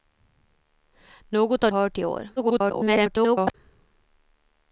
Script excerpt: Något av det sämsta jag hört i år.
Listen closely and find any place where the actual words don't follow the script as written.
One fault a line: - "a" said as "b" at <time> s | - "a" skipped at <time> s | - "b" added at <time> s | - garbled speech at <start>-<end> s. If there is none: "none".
- "det sämsta jag" skipped at 1.7 s
- garbled speech at 2.4-3.5 s